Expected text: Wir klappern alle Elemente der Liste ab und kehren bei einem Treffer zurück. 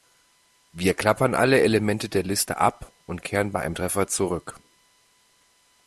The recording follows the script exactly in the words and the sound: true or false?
true